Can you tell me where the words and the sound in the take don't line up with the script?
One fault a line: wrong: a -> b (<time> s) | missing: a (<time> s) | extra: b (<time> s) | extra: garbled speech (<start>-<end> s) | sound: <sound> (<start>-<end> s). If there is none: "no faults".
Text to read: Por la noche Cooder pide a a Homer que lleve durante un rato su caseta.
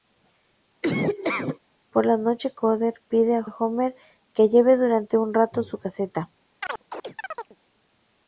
sound: laugh (0.8-1.6 s)
sound: chirp (6.6-7.6 s)